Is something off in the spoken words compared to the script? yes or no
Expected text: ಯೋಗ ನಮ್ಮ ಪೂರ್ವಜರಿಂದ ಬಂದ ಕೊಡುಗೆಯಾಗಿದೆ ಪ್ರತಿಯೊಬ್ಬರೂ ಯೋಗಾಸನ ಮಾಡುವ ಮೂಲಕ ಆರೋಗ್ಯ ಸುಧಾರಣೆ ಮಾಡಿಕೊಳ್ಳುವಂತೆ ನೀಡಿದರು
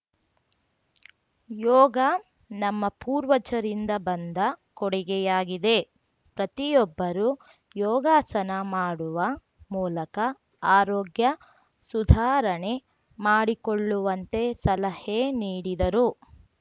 yes